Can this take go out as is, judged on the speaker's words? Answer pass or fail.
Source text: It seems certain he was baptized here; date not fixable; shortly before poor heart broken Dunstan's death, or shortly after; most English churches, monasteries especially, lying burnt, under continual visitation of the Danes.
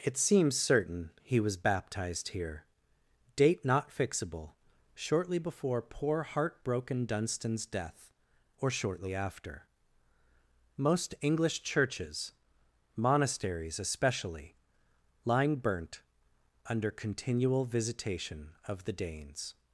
pass